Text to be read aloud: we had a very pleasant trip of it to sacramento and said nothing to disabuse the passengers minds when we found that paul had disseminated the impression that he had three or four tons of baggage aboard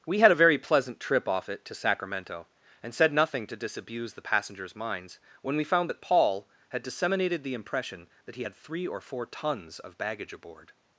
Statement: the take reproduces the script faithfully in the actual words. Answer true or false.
false